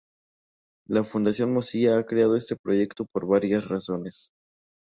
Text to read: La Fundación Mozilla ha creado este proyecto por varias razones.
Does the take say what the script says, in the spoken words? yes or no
yes